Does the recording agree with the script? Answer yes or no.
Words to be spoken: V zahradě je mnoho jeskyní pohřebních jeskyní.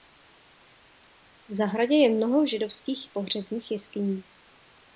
no